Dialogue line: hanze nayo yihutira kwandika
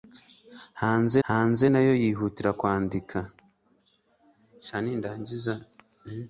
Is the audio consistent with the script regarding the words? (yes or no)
no